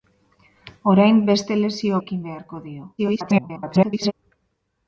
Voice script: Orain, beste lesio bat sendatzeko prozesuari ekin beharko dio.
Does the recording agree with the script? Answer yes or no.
no